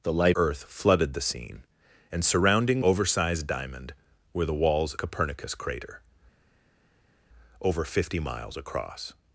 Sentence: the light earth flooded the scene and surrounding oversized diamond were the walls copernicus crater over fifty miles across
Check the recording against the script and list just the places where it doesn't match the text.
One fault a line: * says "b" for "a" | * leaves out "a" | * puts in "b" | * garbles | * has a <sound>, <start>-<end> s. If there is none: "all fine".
all fine